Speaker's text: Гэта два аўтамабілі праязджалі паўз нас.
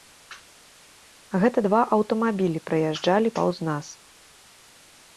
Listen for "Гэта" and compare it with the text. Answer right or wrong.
right